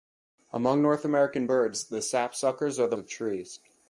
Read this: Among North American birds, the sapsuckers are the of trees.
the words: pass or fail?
pass